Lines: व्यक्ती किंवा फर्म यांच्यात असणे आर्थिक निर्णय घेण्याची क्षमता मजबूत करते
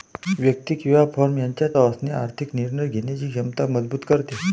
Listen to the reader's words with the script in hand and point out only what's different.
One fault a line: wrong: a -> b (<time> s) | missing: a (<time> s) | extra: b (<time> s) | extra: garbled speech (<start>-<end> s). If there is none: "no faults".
no faults